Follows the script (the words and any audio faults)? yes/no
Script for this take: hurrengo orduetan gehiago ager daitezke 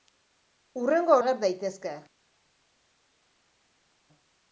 no